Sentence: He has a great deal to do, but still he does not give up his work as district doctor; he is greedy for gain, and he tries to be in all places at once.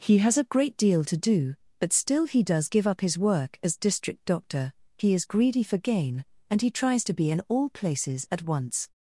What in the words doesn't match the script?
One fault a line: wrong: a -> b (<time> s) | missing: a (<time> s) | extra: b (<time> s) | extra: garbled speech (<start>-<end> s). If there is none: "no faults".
missing: not (2.7 s)